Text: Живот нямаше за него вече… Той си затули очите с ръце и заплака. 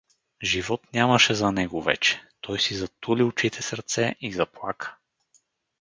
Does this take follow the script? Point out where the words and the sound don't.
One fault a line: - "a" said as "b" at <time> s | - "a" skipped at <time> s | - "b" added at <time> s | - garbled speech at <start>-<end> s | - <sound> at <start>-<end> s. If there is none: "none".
none